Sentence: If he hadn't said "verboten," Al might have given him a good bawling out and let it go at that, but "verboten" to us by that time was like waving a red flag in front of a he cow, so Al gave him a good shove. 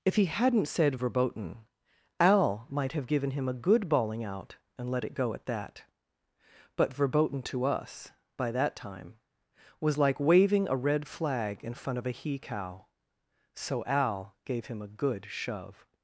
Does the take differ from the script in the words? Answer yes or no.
no